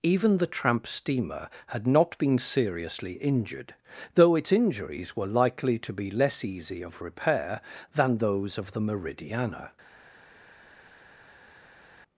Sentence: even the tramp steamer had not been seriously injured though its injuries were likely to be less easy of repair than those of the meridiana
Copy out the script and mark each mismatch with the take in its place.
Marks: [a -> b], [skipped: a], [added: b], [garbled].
even the tramp steamer had not been seriously injured though its injuries were likely to be less easy of repair than those of the meridiana